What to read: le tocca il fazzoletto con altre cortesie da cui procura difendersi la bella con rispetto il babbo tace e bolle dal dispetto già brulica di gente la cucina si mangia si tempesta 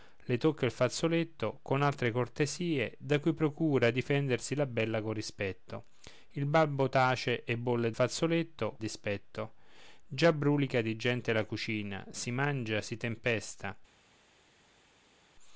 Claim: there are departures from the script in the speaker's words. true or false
true